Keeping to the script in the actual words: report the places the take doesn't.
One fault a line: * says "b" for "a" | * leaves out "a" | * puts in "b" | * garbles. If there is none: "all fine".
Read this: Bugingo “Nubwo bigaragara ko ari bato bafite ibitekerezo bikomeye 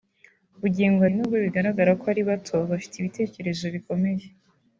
all fine